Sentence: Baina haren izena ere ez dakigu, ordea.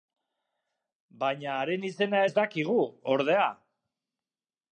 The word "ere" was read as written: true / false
false